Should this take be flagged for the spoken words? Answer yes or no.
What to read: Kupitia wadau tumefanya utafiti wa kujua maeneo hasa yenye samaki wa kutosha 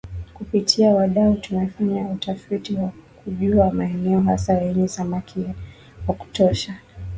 no